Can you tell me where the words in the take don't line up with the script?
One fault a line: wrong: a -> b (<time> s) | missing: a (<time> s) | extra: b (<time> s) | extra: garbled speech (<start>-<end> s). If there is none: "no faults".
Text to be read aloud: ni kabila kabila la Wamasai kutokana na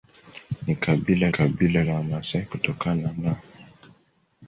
no faults